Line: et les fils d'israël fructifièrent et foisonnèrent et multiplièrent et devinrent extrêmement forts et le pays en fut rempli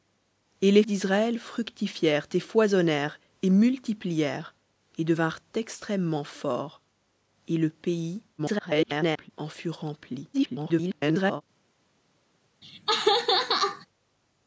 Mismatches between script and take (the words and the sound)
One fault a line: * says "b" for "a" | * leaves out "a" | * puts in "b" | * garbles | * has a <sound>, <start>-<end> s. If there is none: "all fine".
* leaves out "fils"
* garbles
* garbles
* has a laugh, 12.6-13.9 s